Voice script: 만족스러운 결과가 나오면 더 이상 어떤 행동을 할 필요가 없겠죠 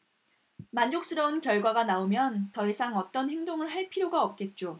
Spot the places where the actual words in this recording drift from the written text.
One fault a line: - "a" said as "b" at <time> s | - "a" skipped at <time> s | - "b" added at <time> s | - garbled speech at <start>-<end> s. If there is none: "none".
none